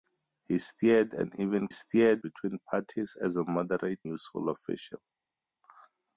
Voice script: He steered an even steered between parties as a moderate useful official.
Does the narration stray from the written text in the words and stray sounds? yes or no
no